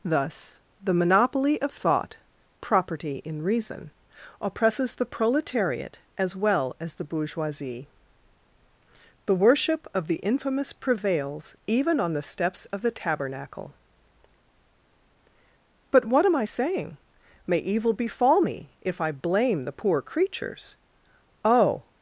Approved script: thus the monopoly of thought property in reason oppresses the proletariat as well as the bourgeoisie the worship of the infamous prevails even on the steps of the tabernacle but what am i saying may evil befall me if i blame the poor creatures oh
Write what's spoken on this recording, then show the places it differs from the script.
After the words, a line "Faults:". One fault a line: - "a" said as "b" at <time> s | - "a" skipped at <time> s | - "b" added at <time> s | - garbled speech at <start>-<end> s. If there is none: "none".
thus the monopoly of thought property in reason oppresses the proletariat as well as the bourgeoisie the worship of the infamous prevails even on the steps of the tabernacle but what am i saying may evil befall me if i blame the poor creatures oh
Faults:
none